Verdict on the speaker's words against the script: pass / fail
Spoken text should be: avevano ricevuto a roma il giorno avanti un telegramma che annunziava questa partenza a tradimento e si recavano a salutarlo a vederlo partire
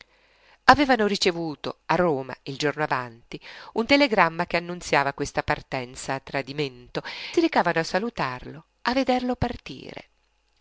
fail